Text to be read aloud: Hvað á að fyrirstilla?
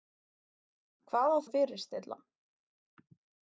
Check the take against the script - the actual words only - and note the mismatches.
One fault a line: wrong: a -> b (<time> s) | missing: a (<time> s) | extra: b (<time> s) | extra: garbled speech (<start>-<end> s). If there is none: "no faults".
no faults